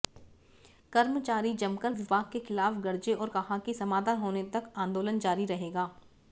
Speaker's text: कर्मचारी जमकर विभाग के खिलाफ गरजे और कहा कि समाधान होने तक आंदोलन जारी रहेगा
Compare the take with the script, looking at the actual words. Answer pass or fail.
pass